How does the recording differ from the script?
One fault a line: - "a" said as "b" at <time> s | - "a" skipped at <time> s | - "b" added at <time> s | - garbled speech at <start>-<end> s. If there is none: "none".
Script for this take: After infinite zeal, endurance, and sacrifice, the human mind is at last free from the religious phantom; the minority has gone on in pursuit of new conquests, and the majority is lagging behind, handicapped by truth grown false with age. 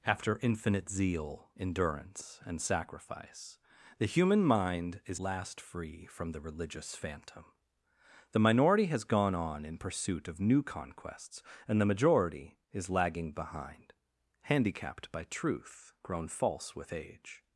- "at" skipped at 5.2 s